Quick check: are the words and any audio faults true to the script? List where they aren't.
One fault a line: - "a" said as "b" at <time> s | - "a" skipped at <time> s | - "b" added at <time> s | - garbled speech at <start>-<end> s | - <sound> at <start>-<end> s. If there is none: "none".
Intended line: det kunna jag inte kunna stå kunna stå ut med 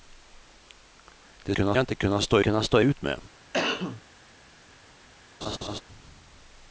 - cough at 3.5-4.0 s
- laugh at 5.4-5.8 s